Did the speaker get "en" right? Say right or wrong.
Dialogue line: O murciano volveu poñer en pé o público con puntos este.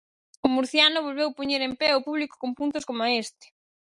right